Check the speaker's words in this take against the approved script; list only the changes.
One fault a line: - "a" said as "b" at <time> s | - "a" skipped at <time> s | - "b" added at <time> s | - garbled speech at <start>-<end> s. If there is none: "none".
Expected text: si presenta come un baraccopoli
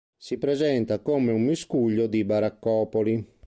- "miscuglio di" added at 1.4 s